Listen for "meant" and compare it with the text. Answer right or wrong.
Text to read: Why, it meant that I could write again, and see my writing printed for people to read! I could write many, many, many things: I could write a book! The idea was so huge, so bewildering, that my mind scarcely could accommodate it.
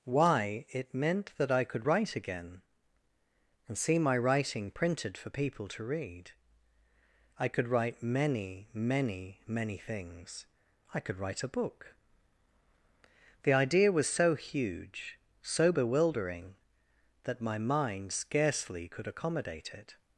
right